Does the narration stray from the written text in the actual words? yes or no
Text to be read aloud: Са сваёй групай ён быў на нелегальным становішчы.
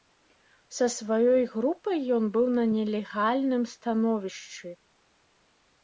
no